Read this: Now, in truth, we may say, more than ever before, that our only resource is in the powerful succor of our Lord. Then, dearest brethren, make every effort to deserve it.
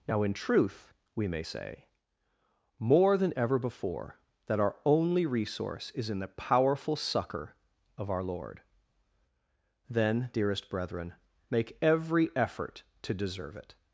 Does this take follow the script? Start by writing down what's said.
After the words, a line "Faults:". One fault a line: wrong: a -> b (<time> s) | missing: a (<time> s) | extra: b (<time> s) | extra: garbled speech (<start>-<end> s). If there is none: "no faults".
Now, in truth, we may say, more than ever before, that our only resource is in the powerful succor of our Lord. Then, dearest brethren, make every effort to deserve it.
Faults:
no faults